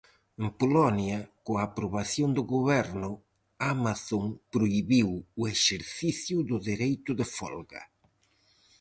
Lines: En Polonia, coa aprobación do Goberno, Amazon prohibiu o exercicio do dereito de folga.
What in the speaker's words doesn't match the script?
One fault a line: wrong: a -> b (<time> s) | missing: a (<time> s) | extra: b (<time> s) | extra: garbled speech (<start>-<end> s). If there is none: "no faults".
no faults